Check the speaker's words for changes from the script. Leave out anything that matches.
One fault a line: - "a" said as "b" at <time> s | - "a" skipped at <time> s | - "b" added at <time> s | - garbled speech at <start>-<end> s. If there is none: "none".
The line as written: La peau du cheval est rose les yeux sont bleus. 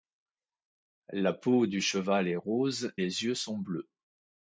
none